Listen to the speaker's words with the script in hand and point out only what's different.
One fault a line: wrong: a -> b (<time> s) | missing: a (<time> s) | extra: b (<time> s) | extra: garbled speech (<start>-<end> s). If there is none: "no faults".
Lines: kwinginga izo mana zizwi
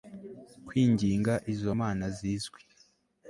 no faults